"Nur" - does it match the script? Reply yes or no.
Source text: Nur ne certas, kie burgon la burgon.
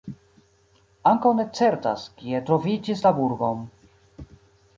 no